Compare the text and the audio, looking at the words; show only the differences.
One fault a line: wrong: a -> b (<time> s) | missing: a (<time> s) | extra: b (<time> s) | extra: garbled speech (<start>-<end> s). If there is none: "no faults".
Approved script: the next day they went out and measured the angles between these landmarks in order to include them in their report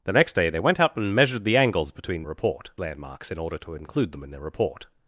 wrong: these -> report (2.2 s)